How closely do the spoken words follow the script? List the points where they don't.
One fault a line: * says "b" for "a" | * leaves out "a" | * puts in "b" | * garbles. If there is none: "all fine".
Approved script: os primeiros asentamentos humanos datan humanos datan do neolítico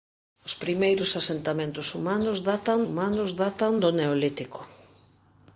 all fine